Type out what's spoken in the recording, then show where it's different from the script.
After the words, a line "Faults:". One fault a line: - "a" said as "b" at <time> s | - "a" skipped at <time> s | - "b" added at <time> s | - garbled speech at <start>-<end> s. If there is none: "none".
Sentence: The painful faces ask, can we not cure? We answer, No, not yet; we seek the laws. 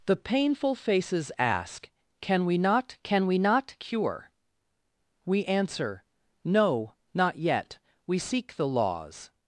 The painful faces ask, can we not can we not cure? We answer, No, not yet; we seek the laws.
Faults:
- "can we not" added at 3.0 s